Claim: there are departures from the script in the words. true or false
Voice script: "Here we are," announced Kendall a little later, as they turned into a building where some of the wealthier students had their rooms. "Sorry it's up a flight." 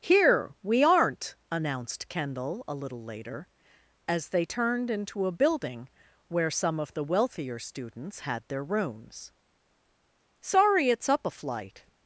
true